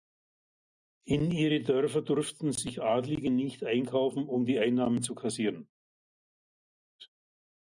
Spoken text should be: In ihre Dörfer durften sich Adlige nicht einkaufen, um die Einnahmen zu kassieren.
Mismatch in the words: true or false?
false